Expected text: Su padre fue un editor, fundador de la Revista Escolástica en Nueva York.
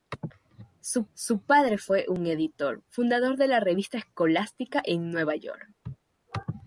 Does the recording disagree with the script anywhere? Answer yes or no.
yes